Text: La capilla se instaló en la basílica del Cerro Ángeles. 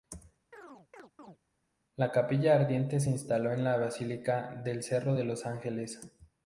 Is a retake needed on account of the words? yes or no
yes